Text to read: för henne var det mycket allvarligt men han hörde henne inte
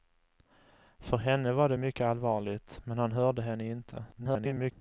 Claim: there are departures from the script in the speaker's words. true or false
true